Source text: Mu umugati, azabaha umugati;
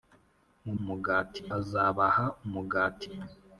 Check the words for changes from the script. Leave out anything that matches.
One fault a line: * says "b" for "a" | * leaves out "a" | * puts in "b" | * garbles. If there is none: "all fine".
all fine